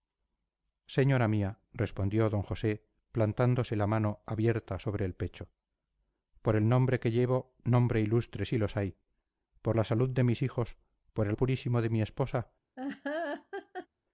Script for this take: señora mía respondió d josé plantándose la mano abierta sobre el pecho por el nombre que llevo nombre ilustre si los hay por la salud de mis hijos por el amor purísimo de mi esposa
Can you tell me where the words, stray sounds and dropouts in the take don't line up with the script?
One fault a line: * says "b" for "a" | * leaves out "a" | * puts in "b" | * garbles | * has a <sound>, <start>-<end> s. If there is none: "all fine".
* leaves out "amor"
* has a laugh, 12.8-13.9 s